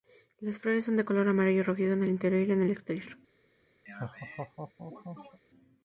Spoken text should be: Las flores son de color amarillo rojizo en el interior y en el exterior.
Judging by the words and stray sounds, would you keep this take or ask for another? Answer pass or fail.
fail